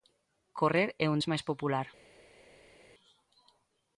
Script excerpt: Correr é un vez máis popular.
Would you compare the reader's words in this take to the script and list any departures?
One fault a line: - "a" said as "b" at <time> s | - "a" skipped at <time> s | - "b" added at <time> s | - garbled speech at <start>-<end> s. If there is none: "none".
none